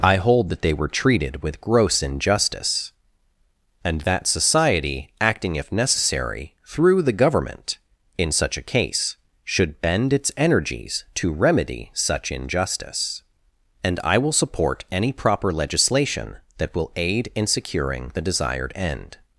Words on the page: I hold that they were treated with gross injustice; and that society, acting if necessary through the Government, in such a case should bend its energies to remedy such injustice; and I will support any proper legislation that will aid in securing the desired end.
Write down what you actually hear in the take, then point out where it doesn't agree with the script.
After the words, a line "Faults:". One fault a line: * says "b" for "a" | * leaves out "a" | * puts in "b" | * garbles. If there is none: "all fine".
I hold that they were treated with gross injustice; and that society, acting if necessary through the Government, in such a case should bend its energies to remedy such injustice; and I will support any proper legislation that will aid in securing the desired end.
Faults:
all fine